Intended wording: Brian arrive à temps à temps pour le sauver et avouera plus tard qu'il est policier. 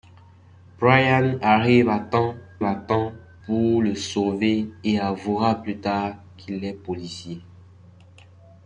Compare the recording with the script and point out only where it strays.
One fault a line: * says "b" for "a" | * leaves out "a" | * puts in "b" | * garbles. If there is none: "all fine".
all fine